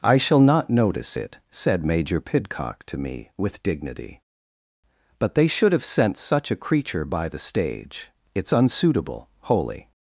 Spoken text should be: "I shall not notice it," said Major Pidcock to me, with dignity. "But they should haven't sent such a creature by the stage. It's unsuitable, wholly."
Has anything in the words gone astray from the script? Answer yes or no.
yes